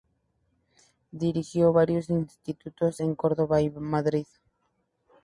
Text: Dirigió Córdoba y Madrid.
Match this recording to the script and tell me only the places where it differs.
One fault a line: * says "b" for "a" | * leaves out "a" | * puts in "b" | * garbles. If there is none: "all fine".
* puts in "varios institutos en"